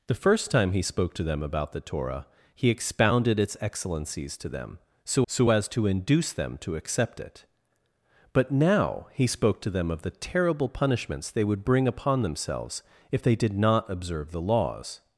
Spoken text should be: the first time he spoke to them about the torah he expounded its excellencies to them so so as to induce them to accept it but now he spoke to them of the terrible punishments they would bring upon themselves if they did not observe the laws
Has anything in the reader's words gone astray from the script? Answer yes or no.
no